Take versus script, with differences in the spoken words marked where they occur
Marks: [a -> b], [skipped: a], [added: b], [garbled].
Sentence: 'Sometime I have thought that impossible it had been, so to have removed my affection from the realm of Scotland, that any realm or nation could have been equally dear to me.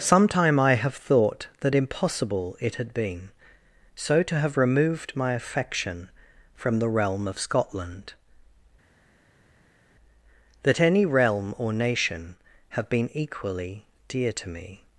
'Sometime I have thought that impossible it had been, so to have removed my affection from the realm of Scotland, that any realm or nation [skipped: could] have been equally dear to me.